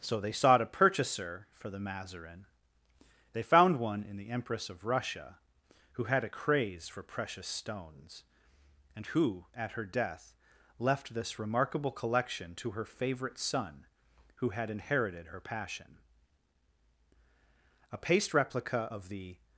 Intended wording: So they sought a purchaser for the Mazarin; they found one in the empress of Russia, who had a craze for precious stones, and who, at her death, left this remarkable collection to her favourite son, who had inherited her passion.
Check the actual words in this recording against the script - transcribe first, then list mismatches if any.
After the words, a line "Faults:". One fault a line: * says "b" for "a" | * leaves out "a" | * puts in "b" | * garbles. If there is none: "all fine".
So they sought a purchaser for the Mazarin; they found one in the empress of Russia, who had a craze for precious stones, and who, at her death, left this remarkable collection to her favourite son, who had inherited her passion. A paste replica of the
Faults:
* puts in "A paste replica of the"